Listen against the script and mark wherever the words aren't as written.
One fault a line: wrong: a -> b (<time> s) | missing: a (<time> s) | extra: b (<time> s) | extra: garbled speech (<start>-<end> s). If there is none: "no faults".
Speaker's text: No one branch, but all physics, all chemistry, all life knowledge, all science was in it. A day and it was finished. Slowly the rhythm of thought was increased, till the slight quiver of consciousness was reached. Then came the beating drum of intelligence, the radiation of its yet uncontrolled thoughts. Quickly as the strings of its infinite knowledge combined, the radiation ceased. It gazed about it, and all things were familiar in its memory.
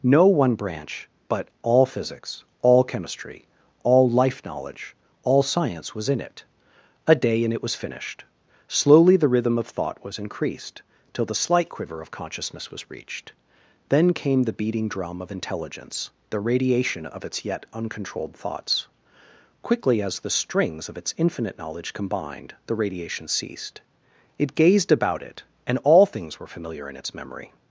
no faults